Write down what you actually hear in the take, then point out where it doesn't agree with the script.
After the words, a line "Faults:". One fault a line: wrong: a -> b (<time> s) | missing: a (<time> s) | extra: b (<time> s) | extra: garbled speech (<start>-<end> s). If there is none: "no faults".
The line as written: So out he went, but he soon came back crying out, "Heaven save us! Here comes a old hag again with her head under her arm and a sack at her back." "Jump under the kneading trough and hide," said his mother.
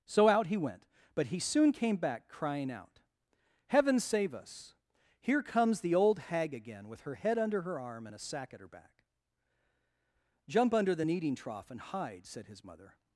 So out he went, but he soon came back crying out, "Heaven save us! Here comes the old hag again with her head under her arm and a sack at her back." "Jump under the kneading trough and hide," said his mother.
Faults:
wrong: a -> the (5.8 s)